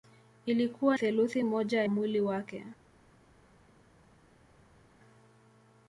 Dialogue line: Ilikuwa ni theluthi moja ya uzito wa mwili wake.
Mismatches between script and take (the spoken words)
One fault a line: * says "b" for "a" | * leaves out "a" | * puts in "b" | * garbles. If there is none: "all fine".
* leaves out "ni"
* leaves out "ya uzito wa"